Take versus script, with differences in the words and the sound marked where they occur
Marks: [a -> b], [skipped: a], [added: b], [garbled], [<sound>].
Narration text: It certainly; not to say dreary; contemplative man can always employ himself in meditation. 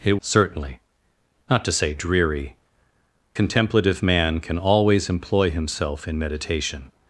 It certainly; not to say dreary; contemplative man can always employ himself in meditation.